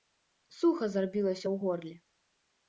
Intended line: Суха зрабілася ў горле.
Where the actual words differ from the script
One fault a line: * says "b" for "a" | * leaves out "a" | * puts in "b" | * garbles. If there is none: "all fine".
all fine